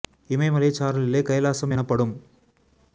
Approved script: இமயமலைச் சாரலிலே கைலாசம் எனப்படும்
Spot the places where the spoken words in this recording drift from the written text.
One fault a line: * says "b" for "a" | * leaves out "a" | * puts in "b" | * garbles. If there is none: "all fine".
all fine